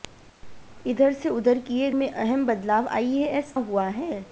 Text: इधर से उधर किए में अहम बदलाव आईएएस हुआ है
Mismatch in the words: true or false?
false